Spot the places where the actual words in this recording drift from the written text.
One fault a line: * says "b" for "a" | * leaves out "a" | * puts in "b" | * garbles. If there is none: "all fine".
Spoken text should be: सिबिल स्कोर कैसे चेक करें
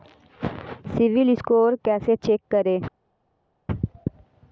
all fine